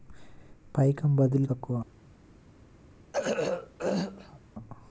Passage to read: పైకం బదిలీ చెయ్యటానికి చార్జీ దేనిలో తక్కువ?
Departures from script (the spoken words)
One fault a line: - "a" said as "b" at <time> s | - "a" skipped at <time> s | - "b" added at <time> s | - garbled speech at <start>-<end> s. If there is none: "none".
- "చెయ్యటానికి చార్జీ దేనిలో" skipped at 1.5 s